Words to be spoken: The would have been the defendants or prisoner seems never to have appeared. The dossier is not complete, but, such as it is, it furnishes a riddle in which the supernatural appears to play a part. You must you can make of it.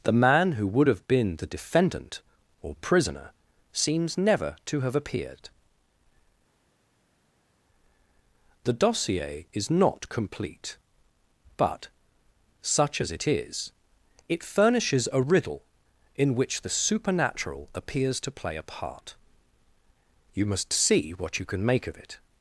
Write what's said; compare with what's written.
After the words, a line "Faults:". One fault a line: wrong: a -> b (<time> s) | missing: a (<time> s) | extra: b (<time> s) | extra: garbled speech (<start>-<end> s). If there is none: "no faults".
The man who would have been the defendant or prisoner seems never to have appeared. The dossier is not complete, but, such as it is, it furnishes a riddle in which the supernatural appears to play a part. You must see what you can make of it.
Faults:
extra: man who (0.1 s)
wrong: defendants -> defendant (1.5 s)
extra: see what (20.7 s)